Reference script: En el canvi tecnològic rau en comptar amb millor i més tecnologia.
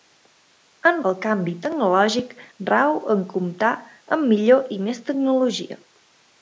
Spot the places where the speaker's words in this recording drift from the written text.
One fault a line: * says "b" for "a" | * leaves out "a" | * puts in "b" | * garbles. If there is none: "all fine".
all fine